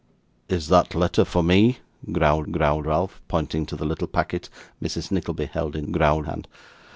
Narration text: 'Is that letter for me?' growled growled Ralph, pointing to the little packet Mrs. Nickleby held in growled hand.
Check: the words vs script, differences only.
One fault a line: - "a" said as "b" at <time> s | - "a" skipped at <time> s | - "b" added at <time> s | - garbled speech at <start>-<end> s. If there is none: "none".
none